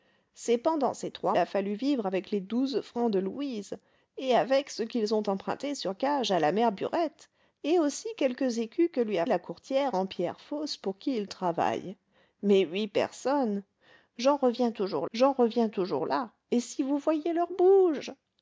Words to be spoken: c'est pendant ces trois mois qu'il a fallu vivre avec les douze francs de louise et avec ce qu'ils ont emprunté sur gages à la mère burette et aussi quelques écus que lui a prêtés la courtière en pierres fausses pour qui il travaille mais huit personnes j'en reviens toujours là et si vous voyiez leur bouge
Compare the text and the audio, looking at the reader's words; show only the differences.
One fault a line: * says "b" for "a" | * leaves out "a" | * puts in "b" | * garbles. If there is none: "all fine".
* leaves out "mois qu'il"
* leaves out "prêtés"
* puts in "j'en reviens toujours"